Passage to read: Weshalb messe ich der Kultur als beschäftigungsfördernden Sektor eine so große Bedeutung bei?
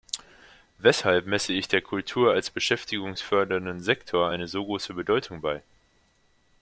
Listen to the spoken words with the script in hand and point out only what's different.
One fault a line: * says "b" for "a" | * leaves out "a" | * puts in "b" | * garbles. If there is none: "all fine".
all fine